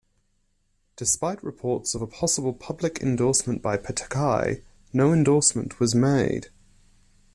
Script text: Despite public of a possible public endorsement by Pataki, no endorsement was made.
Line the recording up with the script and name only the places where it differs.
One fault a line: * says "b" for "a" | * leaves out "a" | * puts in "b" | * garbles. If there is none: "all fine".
* says "reports" for "public"